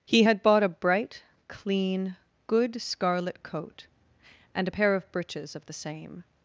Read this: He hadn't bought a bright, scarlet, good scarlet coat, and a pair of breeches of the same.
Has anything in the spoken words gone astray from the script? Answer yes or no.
yes